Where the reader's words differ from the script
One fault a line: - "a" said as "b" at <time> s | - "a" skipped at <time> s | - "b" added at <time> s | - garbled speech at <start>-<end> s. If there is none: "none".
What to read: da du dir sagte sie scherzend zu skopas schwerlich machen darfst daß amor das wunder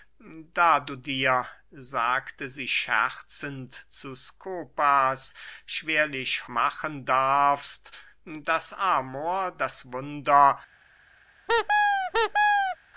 none